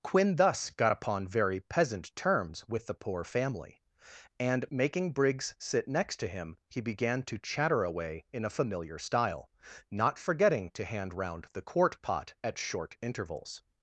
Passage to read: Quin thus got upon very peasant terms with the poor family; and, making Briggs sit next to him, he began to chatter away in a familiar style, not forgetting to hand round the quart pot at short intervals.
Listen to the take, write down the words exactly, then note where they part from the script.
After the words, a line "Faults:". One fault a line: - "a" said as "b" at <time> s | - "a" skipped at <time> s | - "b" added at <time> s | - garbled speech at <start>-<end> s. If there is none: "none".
Quin thus got upon very peasant terms with the poor family; and, making Briggs sit next to him, he began to chatter away in a familiar style, not forgetting to hand round the quart pot at short intervals.
Faults:
none